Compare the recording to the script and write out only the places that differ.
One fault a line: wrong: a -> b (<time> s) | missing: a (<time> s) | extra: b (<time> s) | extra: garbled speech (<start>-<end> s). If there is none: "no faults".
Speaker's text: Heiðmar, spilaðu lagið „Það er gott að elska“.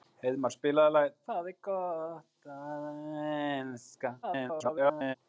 extra: garbled speech (4.2-5.2 s)